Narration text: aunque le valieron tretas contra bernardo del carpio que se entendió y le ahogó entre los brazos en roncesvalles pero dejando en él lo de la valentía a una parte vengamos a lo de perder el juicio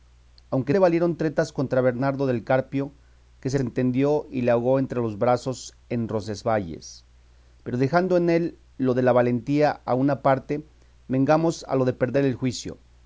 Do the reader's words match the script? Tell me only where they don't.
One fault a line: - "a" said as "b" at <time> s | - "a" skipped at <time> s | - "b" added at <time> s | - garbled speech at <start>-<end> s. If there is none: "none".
none